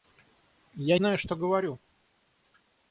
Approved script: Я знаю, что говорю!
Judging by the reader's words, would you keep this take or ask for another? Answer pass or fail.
pass